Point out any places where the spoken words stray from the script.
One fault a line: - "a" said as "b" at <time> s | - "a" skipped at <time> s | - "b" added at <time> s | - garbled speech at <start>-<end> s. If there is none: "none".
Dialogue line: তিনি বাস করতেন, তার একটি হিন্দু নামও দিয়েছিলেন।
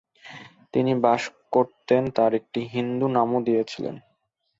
none